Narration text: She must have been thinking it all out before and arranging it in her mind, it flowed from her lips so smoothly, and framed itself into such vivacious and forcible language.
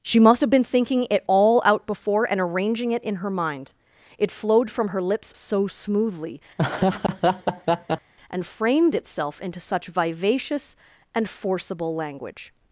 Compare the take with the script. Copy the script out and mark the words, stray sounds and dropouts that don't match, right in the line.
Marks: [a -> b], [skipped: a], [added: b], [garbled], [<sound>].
She must have been thinking it all out before and arranging it in her mind, it flowed from her lips so smoothly, [laugh] and framed itself into such vivacious and forcible language.